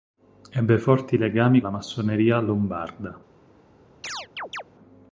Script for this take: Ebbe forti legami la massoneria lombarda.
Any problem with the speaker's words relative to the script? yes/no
no